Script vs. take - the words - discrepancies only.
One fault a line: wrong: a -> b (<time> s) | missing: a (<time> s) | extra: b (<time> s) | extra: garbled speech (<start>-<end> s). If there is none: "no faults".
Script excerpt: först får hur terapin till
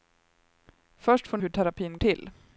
no faults